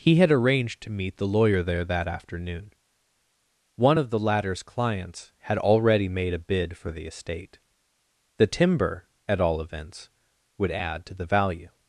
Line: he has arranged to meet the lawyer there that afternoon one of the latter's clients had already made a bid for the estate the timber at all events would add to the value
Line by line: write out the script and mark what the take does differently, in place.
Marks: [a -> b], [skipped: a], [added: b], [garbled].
he [has -> had] arranged to meet the lawyer there that afternoon one of the latter's clients had already made a bid for the estate the timber at all events would add to the value